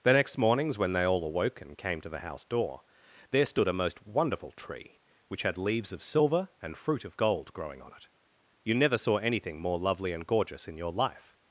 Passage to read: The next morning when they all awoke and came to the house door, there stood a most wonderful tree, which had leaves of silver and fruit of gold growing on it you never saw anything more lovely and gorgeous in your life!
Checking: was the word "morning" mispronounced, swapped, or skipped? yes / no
yes